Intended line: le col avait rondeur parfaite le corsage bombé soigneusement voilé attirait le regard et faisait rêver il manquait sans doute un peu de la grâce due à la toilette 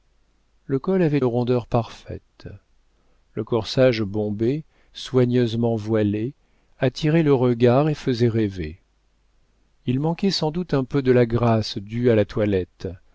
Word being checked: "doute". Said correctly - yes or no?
yes